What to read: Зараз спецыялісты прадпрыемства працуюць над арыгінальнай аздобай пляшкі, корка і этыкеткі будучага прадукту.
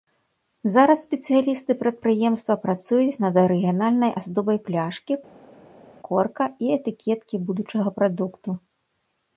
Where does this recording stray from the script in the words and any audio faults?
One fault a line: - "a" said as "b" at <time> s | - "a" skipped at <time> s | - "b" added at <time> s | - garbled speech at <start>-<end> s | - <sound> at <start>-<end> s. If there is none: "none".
none